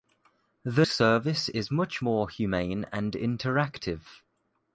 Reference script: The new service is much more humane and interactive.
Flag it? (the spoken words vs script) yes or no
yes